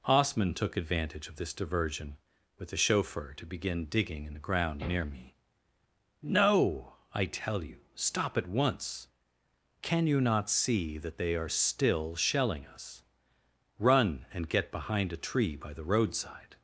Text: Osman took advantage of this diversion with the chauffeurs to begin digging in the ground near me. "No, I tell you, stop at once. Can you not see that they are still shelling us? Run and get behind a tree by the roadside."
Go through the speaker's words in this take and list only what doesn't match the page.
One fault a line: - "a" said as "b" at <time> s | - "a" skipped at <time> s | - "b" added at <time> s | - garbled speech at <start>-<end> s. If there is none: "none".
- "chauffeurs" said as "chauffeur" at 2.8 s